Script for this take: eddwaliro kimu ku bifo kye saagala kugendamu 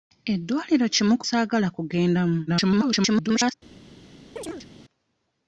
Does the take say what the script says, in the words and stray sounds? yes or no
no